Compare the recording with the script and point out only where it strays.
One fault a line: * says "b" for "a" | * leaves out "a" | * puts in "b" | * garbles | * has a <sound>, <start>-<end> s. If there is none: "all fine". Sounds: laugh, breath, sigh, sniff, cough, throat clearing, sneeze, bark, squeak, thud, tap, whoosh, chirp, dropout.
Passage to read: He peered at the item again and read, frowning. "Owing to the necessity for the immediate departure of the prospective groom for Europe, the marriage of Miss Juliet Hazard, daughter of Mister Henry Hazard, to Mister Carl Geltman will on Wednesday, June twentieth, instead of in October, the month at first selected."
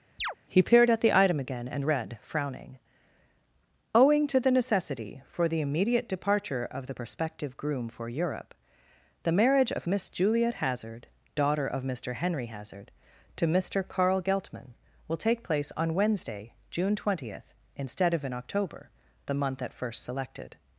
* has a chirp, 0.2-0.4 s
* puts in "take place"